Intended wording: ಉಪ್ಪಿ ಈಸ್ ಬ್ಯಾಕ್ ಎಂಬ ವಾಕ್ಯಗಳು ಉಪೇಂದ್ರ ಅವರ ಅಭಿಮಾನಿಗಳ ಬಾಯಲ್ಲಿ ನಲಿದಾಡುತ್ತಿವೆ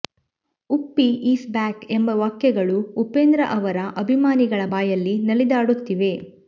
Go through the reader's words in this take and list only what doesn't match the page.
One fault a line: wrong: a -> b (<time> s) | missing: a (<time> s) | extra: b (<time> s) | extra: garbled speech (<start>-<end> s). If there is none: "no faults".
no faults